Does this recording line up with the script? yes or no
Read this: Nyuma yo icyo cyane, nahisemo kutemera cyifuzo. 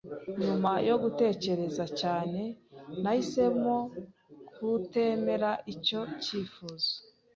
no